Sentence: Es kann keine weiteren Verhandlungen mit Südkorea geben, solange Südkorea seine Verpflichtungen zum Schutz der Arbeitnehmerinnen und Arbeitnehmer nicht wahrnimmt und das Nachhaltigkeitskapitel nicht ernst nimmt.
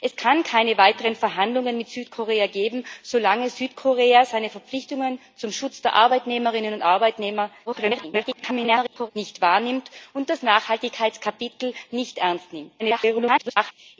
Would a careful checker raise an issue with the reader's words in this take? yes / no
yes